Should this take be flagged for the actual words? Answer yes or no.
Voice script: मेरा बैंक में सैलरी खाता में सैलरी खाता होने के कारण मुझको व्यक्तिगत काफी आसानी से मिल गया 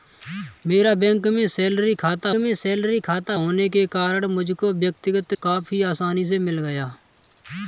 no